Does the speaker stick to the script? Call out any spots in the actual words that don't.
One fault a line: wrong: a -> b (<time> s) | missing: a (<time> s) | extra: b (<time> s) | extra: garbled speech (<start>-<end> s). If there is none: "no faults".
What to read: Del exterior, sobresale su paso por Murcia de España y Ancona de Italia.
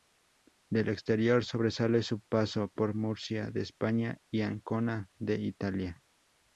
no faults